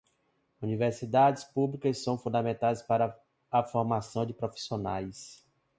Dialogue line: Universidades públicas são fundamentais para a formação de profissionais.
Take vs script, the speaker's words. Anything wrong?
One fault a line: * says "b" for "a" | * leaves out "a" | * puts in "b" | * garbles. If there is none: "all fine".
all fine